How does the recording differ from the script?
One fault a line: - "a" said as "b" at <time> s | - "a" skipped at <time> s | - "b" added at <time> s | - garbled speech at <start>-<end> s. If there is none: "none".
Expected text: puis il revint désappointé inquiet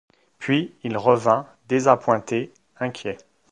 none